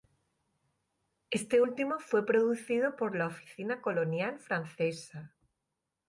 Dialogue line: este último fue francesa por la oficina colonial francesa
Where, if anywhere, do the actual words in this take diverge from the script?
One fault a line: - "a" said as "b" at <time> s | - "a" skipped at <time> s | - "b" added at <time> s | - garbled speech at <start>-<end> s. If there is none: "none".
- "francesa" said as "producido" at 2.3 s